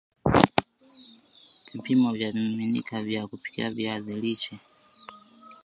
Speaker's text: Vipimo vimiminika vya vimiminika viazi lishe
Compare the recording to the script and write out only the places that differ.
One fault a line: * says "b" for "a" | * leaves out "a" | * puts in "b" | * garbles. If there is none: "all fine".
* puts in "vya"
* says "kupikia" for "vimiminika"